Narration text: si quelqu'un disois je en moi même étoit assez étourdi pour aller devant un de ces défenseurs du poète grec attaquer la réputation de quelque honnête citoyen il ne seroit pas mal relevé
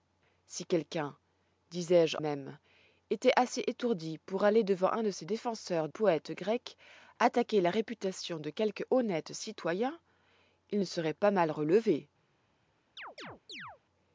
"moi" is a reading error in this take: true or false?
true